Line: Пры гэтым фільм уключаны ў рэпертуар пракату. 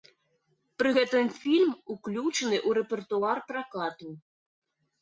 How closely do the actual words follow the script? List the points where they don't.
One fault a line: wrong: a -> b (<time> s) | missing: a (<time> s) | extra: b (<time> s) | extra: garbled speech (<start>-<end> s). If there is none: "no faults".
no faults